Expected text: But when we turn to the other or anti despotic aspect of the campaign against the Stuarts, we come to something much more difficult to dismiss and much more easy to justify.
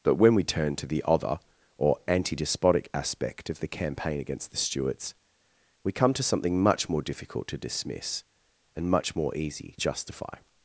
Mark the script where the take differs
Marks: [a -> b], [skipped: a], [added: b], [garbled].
But when we turn to the other or anti despotic aspect of the campaign against the Stuarts, we come to something much more difficult to dismiss and much more easy [skipped: to] justify.